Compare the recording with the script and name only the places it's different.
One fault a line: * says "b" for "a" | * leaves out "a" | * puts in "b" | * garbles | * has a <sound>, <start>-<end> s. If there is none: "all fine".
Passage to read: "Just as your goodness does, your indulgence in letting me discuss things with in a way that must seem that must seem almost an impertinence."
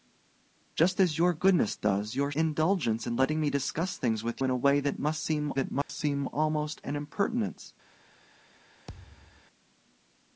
* has a dropout, 5.8-5.9 s
* has a thud, 8.9-9.4 s